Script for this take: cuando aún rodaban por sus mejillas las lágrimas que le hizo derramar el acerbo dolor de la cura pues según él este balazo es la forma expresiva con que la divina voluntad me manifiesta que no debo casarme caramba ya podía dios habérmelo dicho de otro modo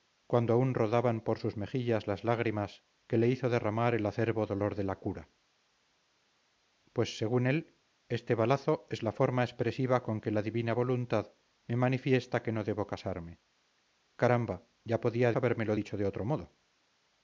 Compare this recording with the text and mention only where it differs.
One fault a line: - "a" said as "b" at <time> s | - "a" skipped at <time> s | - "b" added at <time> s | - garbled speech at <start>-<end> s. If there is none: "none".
- "dios" skipped at 15.3 s